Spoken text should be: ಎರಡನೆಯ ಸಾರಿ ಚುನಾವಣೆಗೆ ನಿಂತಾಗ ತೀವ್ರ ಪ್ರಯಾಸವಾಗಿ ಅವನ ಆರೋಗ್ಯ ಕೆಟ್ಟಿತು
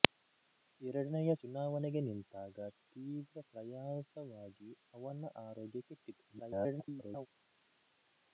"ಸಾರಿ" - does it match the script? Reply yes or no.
no